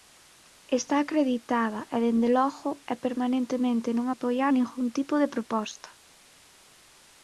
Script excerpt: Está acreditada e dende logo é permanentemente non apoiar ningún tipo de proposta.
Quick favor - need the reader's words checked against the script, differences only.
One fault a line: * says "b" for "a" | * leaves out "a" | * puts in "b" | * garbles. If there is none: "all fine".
all fine